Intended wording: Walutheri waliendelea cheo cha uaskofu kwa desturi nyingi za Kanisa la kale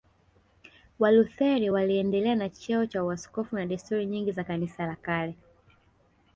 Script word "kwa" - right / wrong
wrong